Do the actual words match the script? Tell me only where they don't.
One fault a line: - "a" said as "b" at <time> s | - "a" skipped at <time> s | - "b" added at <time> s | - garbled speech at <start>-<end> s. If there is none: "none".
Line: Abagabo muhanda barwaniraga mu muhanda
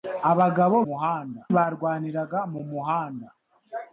none